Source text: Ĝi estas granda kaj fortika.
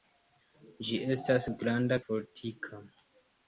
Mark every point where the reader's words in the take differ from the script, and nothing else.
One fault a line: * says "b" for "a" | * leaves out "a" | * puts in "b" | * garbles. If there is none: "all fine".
* leaves out "kaj"